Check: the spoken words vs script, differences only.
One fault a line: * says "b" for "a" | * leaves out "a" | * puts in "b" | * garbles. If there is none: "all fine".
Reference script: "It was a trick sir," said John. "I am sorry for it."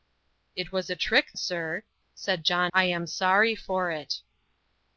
all fine